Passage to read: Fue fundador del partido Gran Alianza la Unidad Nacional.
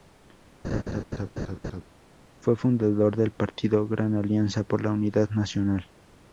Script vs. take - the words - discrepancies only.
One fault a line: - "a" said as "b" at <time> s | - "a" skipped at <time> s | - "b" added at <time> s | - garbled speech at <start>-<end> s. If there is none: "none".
- "por" added at 4.6 s